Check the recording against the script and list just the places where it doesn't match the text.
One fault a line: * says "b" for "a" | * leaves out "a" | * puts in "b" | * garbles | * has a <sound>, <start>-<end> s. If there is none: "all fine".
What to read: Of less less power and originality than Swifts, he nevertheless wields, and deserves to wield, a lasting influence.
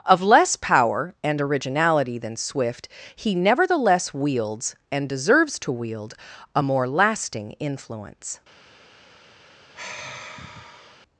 * leaves out "less"
* says "Swift" for "Swifts"
* puts in "more"
* has a sigh, 9.7-11.0 s